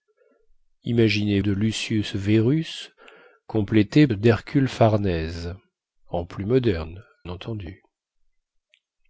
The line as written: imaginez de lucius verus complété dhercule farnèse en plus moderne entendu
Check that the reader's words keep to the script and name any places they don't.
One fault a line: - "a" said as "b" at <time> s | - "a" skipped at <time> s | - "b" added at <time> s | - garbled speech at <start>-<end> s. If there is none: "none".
none